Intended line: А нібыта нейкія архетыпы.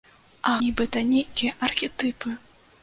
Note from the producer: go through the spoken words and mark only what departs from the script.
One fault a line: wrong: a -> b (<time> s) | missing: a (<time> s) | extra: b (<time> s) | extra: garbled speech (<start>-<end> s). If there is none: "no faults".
no faults